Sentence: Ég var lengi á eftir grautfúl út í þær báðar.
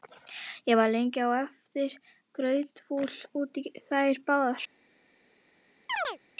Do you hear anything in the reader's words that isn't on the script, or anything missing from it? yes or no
no